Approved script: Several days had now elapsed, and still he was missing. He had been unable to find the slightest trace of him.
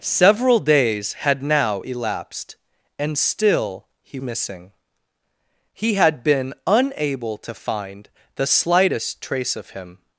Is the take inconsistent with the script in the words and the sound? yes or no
yes